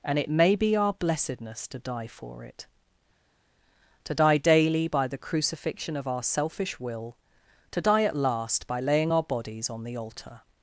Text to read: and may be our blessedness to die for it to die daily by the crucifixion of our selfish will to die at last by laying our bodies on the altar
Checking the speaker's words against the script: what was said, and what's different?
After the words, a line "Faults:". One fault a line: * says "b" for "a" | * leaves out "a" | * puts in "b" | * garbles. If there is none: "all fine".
and it may be our blessedness to die for it to die daily by the crucifixion of our selfish will to die at last by laying our bodies on the altar
Faults:
* puts in "it"